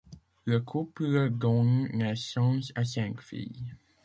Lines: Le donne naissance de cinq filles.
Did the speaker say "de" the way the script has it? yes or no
no